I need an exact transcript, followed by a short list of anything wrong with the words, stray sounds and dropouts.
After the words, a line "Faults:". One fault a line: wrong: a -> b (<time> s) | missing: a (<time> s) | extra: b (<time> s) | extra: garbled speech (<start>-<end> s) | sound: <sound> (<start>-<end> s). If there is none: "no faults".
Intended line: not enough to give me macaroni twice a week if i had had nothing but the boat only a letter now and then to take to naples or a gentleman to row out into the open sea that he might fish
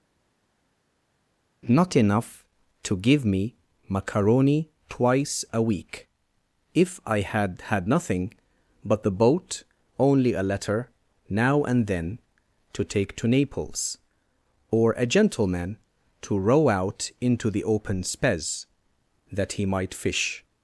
not enough to give me macaroni twice a week if i had had nothing but the boat only a letter now and then to take to naples or a gentleman to row out into the open spez that he might fish
Faults:
wrong: sea -> spez (18.0 s)